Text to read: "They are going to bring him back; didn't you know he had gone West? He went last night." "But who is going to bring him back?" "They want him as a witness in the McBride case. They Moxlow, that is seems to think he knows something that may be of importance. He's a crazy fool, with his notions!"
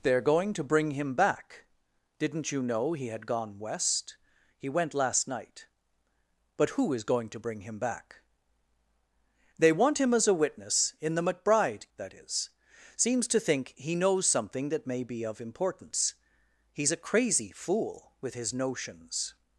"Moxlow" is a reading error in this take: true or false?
true